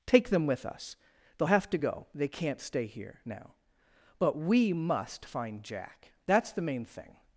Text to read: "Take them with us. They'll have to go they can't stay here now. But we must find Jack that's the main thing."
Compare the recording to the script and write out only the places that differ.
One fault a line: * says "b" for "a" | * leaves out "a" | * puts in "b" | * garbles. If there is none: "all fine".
all fine